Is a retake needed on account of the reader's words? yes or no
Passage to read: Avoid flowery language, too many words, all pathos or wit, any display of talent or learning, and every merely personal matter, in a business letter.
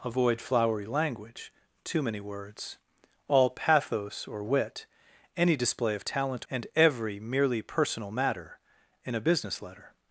yes